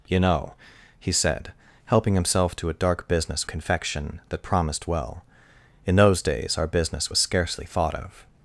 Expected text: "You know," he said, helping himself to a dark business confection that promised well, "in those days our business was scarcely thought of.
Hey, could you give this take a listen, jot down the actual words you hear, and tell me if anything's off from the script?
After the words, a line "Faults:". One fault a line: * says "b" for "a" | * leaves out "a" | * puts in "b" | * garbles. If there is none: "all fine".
"You know," he said, helping himself to a dark business confection that promised well, "in those days our business was scarcely thought of.
Faults:
all fine